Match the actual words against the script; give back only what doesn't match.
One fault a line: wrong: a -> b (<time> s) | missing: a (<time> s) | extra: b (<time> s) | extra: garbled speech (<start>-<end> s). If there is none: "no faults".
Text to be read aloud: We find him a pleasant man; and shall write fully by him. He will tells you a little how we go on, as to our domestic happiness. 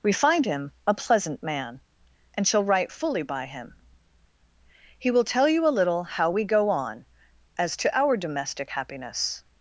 wrong: tells -> tell (5.2 s)